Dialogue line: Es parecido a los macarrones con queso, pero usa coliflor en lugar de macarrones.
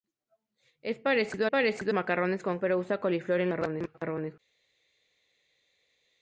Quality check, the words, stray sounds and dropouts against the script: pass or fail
fail